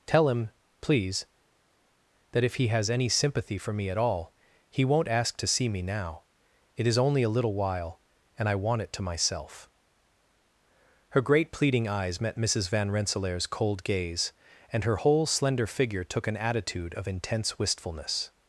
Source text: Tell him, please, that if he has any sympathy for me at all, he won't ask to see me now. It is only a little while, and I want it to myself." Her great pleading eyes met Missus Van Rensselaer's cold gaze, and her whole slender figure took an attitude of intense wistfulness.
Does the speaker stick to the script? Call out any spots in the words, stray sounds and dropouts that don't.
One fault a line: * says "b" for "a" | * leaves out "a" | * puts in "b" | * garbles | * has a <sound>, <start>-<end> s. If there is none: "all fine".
all fine